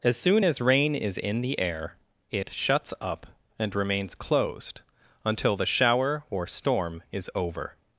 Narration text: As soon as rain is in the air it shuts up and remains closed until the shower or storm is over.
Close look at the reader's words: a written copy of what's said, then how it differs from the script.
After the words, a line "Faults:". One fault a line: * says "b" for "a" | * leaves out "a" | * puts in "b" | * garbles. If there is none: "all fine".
As soon as rain is in the air it shuts up and remains closed until the shower or storm is over.
Faults:
all fine